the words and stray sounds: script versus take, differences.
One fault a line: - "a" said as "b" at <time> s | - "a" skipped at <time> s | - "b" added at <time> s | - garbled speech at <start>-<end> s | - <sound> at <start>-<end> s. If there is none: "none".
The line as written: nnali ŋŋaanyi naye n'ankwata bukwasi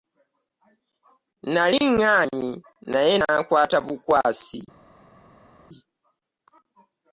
none